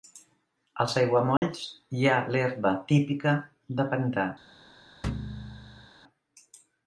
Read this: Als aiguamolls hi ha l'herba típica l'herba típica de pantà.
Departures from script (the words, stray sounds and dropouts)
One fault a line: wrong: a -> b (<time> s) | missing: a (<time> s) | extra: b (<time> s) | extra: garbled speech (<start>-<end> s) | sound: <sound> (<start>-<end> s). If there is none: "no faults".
sound: dropout (1.4-1.4 s)
missing: l'herba típica (3.4 s)
sound: thud (5.0-5.9 s)